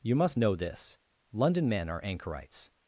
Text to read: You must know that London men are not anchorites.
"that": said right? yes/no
no